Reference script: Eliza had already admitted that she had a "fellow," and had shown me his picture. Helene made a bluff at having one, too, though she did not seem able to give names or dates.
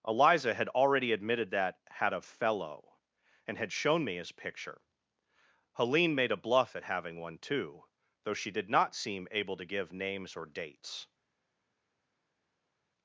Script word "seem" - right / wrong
right